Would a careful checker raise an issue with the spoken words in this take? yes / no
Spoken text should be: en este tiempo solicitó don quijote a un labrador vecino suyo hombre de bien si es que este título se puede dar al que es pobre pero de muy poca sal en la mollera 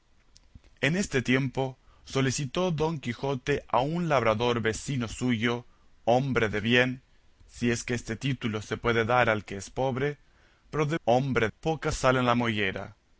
yes